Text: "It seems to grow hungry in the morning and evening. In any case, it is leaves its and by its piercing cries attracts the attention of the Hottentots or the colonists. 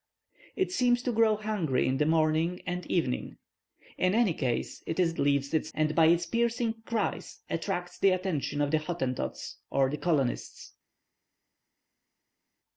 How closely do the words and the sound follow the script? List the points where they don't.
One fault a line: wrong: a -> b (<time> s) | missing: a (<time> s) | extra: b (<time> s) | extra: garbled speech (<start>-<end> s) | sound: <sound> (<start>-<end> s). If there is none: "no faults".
no faults